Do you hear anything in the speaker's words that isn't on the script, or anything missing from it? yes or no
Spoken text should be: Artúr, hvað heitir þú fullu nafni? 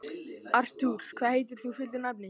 no